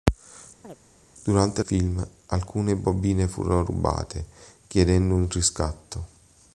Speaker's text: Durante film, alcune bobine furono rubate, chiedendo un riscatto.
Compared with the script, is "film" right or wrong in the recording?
right